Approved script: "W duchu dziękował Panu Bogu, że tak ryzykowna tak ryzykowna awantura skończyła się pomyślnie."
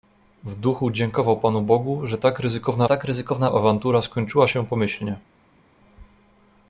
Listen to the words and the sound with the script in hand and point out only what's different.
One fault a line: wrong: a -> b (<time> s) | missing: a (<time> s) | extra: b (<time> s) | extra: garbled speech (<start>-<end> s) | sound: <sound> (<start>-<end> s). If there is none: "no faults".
no faults